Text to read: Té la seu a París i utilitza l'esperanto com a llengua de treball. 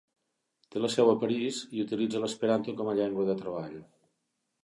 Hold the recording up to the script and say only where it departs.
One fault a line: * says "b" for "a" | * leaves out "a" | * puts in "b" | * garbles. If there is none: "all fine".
all fine